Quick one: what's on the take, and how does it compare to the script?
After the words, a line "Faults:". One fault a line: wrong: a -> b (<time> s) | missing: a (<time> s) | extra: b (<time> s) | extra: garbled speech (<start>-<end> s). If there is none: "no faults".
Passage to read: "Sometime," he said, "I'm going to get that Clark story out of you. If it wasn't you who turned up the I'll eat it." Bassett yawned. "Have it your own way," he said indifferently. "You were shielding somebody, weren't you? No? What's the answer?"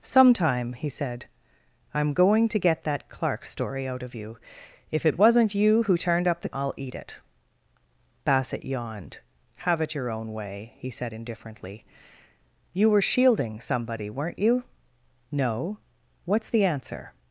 "Sometime," he said, "I'm going to get that Clark story out of you. If it wasn't you who turned up the I'll eat it." Bassett yawned. "Have it your own way," he said indifferently. "You were shielding somebody, weren't you? No? What's the answer?"
Faults:
no faults